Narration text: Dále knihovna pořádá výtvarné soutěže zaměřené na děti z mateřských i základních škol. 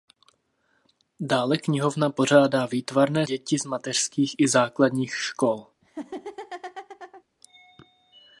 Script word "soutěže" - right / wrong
wrong